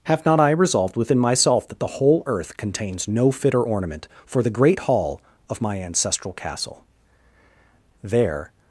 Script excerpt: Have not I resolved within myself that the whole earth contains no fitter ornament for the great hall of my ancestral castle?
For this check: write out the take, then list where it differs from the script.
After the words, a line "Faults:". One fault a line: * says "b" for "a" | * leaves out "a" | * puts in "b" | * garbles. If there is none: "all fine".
Have not I resolved within myself that the whole earth contains no fitter ornament for the great hall of my ancestral castle? There
Faults:
* puts in "There"